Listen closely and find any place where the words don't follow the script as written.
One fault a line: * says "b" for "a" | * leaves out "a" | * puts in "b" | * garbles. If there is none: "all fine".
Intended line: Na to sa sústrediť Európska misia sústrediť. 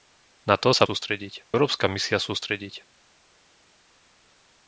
all fine